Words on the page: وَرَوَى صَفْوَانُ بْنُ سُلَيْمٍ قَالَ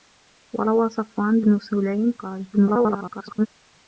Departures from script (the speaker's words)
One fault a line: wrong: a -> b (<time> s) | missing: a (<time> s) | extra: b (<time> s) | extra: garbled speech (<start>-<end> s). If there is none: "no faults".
extra: garbled speech (2.5-3.5 s)